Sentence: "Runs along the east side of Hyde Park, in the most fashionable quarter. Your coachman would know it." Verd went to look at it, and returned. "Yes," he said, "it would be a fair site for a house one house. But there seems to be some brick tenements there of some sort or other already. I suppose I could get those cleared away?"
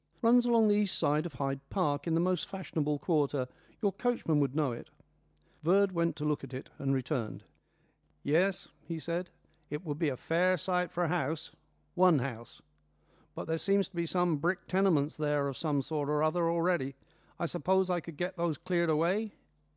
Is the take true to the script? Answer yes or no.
yes